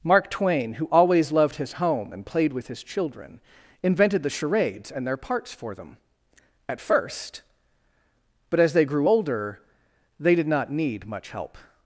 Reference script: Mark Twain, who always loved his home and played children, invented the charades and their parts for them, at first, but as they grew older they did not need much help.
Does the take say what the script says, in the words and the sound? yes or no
no